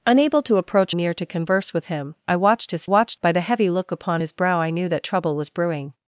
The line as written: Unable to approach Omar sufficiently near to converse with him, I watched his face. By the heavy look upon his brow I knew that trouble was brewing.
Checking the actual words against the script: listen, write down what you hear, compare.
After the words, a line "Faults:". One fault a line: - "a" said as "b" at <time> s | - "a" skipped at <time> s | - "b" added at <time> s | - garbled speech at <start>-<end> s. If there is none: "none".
Unable to approach Near to converse with him, I watched his watched. By the heavy look upon his brow I knew that trouble was brewing.
Faults:
- "Omar sufficiently" skipped at 0.9 s
- "face" said as "watched" at 2.8 s